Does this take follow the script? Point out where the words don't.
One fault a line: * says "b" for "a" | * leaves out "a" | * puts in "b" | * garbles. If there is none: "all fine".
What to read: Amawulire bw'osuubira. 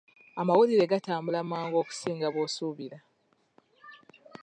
* puts in "gatambula mangu okusinga"